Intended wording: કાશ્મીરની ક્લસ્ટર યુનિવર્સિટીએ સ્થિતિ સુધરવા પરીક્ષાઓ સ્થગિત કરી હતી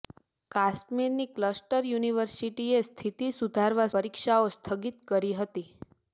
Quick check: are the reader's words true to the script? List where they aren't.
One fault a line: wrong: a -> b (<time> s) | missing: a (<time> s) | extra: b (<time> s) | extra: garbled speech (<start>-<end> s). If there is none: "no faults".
no faults